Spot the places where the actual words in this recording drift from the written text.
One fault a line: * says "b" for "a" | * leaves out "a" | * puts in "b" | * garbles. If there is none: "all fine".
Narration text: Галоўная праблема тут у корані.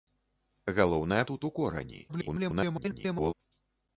* leaves out "праблема"
* garbles